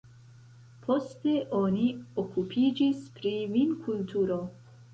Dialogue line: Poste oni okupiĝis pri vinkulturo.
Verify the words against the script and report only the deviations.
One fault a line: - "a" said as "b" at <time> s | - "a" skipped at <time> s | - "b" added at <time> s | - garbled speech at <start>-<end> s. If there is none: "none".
none